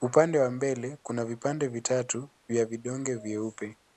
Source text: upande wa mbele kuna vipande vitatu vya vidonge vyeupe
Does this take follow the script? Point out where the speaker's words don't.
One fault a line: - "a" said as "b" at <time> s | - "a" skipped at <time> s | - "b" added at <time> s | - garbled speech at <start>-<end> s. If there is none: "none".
none